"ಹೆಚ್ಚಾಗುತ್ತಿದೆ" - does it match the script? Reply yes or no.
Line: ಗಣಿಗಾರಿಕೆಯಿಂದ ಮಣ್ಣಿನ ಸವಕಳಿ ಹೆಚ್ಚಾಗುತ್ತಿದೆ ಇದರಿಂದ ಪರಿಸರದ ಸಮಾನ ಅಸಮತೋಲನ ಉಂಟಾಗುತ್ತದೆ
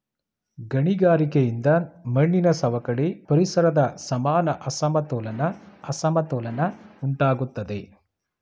no